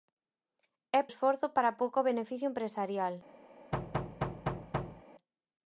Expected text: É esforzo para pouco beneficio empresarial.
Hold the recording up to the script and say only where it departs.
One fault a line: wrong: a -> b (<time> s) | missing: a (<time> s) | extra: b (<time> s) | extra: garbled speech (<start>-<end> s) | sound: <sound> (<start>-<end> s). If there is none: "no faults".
sound: thud (3.7-5.0 s)